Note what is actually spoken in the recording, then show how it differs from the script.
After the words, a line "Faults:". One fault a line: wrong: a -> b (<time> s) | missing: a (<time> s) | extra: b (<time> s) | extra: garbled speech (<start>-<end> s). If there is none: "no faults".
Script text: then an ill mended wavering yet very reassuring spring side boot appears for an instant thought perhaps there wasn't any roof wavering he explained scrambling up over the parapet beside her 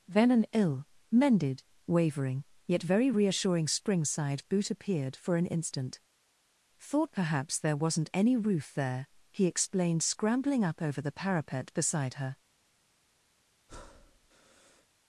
then an ill mended wavering yet very reassuring spring side boot appeared for an instant thought perhaps there wasn't any roof there he explained scrambling up over the parapet beside her
Faults:
wrong: appears -> appeared (4.7 s)
wrong: wavering -> there (8.7 s)